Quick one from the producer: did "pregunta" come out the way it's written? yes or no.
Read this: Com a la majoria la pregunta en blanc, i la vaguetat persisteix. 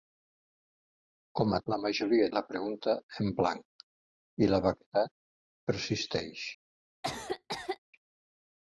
yes